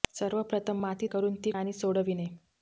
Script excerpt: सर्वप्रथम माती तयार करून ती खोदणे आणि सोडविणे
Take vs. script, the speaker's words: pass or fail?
fail